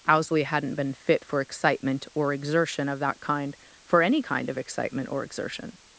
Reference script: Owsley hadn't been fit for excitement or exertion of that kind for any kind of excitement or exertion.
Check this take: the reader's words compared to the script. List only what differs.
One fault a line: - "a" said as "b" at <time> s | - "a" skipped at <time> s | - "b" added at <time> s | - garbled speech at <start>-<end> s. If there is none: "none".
none